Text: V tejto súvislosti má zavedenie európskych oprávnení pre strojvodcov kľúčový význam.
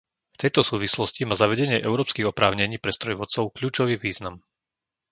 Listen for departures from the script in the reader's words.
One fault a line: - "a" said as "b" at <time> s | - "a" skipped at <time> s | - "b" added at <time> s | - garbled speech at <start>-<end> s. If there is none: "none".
none